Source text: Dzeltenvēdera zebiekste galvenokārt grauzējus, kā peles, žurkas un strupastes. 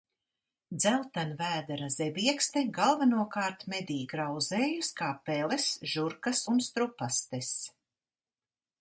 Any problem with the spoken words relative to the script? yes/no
yes